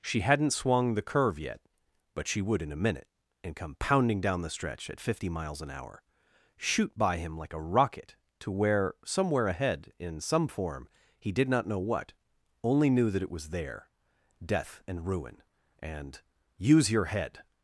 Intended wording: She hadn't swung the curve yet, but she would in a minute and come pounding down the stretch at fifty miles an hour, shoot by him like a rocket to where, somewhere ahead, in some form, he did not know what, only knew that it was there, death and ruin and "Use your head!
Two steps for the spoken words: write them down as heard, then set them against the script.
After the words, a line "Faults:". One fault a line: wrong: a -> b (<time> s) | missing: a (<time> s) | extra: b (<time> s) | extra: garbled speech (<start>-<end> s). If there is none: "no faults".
She hadn't swung the curve yet, but she would in a minute and come pounding down the stretch at fifty miles an hour, shoot by him like a rocket to where, somewhere ahead, in some form, he did not know what, only knew that it was there, death and ruin and "Use your head!
Faults:
no faults